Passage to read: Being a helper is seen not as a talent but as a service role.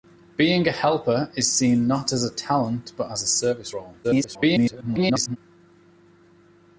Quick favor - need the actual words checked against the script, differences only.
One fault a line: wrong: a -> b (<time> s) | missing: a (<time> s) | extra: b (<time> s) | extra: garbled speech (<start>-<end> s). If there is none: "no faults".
extra: garbled speech (4.0-5.4 s)